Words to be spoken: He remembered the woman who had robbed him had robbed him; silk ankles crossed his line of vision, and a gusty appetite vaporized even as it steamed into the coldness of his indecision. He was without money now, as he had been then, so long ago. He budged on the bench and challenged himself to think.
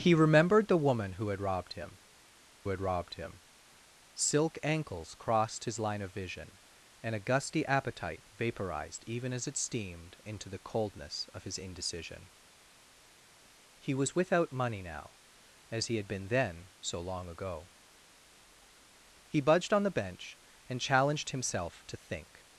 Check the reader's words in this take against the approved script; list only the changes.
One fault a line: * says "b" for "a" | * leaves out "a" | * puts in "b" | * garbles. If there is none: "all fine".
all fine